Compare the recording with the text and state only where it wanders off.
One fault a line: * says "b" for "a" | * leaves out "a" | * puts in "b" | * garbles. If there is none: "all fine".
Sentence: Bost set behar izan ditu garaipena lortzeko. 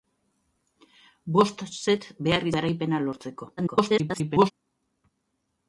* leaves out "izan ditu"
* garbles